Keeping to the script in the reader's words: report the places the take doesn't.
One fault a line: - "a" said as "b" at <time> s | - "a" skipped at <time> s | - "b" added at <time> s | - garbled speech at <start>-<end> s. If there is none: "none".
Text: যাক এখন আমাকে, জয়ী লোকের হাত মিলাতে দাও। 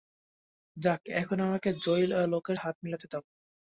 none